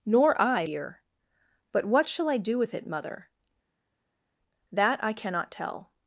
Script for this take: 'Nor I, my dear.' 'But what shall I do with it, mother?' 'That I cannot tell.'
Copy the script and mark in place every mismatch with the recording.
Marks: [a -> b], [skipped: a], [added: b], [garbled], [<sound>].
'Nor I, [skipped: my] dear.' 'But what shall I do with it, mother?' 'That I cannot tell.'